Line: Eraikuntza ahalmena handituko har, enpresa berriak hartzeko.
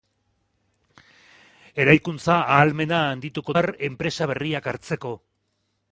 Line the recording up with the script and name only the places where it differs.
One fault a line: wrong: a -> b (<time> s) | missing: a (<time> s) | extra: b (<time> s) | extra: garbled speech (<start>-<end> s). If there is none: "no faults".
no faults